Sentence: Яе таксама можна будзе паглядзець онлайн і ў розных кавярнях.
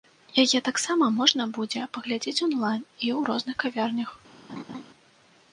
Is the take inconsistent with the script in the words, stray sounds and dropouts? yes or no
yes